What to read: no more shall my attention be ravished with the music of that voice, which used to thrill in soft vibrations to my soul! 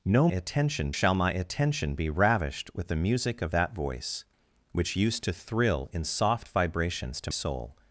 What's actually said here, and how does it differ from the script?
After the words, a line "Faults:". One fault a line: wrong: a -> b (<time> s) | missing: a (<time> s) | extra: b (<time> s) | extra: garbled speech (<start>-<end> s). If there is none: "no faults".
no attention shall my attention be ravished with the music of that voice, which used to thrill in soft vibrations to soul!
Faults:
wrong: more -> attention (0.3 s)
missing: my (7.3 s)